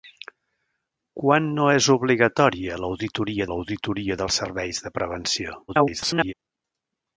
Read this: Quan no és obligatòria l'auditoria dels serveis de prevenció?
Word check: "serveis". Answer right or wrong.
right